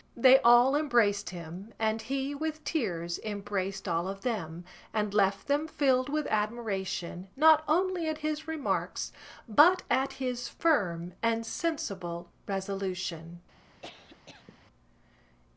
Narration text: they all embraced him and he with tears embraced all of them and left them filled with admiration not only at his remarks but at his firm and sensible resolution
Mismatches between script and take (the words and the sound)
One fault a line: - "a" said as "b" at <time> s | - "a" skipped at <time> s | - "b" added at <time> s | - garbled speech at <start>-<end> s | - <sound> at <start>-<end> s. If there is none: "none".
- cough at 13.8-14.7 s